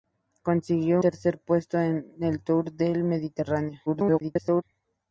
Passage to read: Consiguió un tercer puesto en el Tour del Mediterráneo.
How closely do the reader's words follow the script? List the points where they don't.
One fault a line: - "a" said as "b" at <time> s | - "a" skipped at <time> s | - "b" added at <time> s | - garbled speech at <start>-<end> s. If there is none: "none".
- "un" skipped at 1.0 s
- garbled speech at 3.9-4.6 s